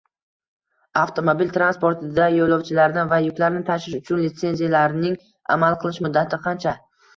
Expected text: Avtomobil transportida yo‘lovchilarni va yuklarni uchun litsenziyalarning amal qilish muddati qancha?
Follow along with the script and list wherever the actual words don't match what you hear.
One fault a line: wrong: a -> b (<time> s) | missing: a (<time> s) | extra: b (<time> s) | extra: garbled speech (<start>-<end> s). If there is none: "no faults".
extra: tashish (3.7 s)